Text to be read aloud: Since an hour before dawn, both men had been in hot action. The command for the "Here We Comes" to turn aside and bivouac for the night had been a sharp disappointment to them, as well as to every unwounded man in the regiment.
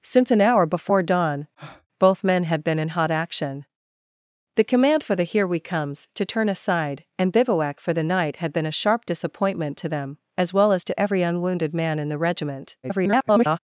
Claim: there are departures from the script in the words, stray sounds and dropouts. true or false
true